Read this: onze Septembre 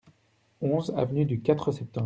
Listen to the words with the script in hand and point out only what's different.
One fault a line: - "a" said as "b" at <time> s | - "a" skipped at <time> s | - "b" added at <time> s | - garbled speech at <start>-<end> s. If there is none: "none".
- "avenue du Quatre" added at 1.0 s